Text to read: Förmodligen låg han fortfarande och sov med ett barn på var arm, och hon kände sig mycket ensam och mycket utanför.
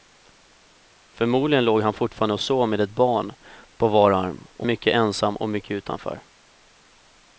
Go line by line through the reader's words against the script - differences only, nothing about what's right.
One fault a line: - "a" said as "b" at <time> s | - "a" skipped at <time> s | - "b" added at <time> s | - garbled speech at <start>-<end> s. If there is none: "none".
- "hon kände sig" skipped at 4.7 s